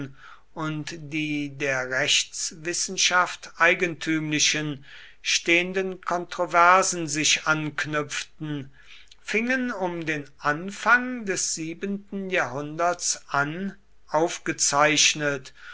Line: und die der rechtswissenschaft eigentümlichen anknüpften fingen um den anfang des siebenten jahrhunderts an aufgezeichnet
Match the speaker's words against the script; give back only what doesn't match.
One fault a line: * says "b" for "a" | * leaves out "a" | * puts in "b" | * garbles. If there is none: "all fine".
* puts in "stehenden kontroversen sich"